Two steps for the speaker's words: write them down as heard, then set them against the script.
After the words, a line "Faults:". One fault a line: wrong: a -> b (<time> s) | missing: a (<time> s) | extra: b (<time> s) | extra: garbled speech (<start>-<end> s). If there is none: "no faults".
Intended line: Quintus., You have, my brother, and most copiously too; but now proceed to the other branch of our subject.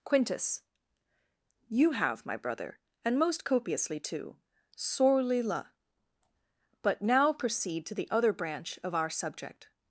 Quintus., You have, my brother, and most copiously too; sorely la but now proceed to the other branch of our subject.
Faults:
extra: sorely la (4.8 s)